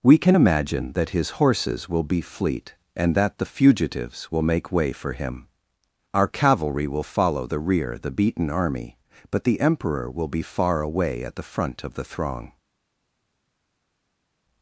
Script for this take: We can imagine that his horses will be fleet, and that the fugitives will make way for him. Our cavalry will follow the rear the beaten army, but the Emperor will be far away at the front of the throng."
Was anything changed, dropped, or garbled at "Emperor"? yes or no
no